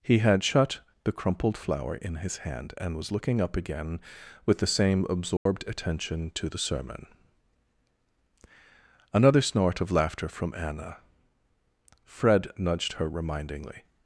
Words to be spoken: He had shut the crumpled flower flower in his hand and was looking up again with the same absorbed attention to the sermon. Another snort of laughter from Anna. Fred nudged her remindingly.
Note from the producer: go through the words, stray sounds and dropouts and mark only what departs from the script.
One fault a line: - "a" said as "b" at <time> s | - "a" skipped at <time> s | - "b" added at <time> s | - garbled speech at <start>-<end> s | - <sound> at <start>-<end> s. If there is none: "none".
- "flower" skipped at 1.9 s
- dropout at 5.4-5.5 s